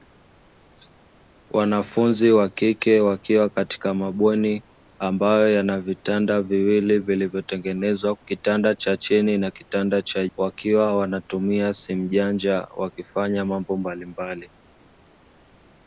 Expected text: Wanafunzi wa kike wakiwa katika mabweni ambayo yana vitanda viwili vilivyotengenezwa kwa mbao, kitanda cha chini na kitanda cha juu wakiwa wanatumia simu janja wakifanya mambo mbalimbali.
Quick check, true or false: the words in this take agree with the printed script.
false